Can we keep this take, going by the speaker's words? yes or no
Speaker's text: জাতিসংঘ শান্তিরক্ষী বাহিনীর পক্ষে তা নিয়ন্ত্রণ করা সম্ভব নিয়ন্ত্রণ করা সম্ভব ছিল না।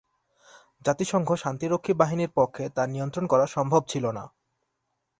no